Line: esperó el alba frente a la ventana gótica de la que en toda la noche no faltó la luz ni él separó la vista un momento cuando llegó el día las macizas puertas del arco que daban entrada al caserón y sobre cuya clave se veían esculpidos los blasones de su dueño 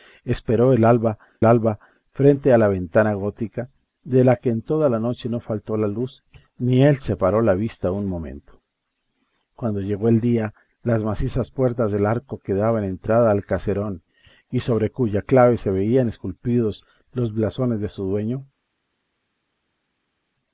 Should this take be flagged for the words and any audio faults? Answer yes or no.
yes